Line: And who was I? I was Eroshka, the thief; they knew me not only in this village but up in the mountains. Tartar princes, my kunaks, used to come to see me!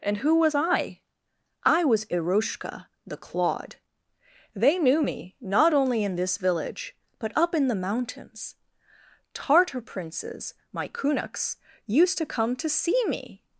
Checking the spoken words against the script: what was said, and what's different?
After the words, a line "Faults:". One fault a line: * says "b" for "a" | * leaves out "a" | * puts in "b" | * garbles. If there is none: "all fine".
And who was I? I was Eroshka, the clawed; they knew me not only in this village but up in the mountains. Tartar princes, my kunaks, used to come to see me!
Faults:
* says "clawed" for "thief"